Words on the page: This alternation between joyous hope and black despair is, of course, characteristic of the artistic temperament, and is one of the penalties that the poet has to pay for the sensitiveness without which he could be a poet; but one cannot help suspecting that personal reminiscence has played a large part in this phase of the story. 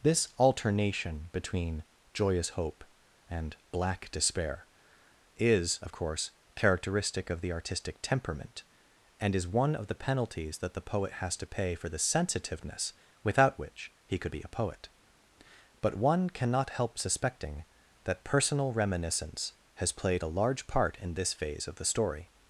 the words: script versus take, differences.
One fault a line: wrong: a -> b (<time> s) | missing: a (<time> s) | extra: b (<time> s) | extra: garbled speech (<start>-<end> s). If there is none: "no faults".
no faults